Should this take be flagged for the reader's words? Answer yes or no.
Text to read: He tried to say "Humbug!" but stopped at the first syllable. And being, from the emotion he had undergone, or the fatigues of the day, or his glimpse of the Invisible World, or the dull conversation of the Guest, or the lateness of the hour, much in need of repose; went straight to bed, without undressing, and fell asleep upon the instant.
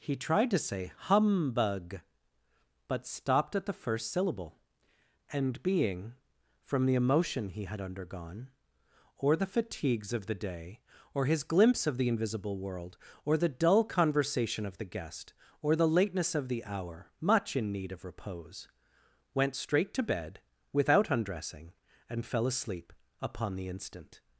no